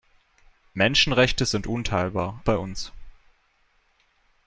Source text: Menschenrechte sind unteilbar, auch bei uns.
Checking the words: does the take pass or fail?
fail